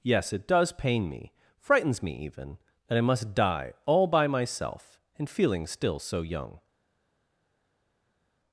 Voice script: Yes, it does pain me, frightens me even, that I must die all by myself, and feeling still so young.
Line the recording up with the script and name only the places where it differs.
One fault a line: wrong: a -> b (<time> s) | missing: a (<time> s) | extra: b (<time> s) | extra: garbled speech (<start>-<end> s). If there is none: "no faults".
no faults